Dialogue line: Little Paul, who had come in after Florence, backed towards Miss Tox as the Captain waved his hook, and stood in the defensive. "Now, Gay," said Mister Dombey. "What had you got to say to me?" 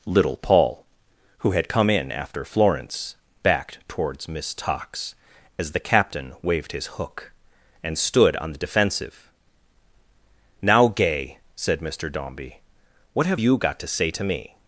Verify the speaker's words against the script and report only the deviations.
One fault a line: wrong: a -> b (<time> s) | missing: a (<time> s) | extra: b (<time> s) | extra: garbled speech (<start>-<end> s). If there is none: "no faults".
wrong: in -> on (8.4 s)
wrong: had -> have (13.3 s)